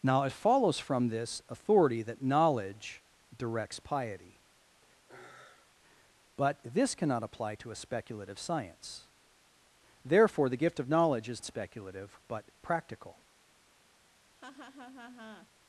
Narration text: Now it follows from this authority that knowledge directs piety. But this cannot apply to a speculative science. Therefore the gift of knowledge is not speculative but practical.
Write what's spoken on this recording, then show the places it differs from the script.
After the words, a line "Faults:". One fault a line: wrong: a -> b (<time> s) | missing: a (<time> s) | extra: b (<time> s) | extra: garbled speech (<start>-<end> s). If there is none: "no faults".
Now it follows from this authority that knowledge directs piety. But this cannot apply to a speculative science. Therefore the gift of knowledge is speculative but practical.
Faults:
missing: not (11.4 s)